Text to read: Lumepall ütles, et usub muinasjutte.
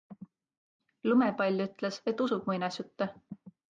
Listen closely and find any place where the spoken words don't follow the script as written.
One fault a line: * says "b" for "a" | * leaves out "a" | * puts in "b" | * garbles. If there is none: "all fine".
all fine